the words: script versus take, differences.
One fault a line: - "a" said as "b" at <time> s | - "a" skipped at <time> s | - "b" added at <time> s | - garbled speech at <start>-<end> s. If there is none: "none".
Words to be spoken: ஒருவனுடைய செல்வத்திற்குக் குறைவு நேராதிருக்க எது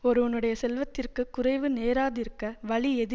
- "வழி" added at 2.6 s